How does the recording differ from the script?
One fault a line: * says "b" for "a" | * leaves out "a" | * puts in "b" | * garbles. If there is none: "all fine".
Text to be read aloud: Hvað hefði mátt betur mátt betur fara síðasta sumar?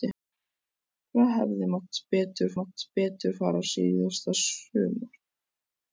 all fine